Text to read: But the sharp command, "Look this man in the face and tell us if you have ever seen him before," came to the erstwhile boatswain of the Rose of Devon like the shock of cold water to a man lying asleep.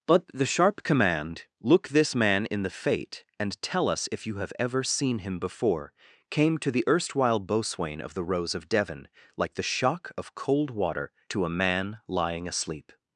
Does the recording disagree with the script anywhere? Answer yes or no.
yes